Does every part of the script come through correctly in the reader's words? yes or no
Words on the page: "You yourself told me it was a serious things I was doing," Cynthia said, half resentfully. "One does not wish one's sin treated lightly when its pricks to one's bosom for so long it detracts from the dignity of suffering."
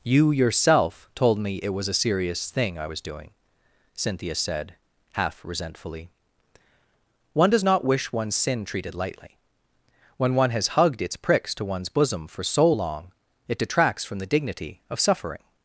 no